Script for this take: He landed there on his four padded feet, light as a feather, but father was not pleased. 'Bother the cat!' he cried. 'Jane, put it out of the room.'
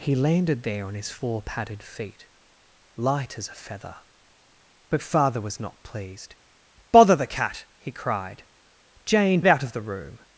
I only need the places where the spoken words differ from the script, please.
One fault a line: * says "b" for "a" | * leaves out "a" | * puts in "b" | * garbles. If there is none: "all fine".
* leaves out "put"